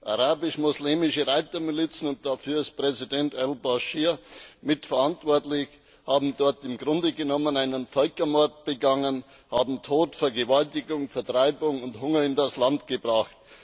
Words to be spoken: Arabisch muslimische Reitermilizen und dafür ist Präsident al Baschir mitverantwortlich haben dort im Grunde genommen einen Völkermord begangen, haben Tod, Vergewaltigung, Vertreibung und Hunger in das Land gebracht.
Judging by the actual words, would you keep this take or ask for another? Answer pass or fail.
pass